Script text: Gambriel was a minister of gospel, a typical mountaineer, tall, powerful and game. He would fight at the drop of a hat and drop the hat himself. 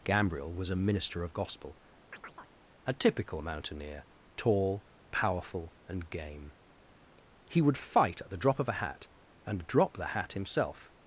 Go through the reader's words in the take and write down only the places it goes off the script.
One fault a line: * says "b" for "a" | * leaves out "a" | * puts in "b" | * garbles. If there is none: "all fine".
all fine